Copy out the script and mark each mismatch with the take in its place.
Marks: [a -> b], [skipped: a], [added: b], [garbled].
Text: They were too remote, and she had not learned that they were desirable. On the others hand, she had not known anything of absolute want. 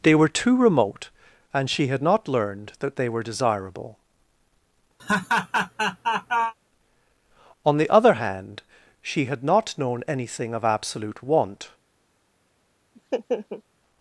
They were too remote, and she had not learned that they were desirable. On the [others -> other] hand, she had not known anything of absolute want.